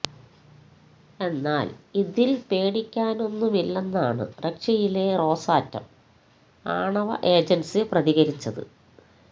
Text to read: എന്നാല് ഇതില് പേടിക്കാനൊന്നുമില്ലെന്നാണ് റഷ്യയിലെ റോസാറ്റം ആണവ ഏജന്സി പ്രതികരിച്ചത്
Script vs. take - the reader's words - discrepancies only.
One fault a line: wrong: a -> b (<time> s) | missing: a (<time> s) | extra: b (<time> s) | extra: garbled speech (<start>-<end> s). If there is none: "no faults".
no faults